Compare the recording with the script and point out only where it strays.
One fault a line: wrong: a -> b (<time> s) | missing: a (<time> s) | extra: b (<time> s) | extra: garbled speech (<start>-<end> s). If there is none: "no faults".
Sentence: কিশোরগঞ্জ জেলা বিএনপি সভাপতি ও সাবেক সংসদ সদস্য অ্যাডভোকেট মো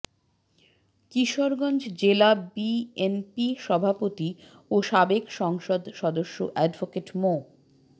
no faults